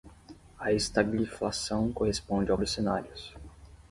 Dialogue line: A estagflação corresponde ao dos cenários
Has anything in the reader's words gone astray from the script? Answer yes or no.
no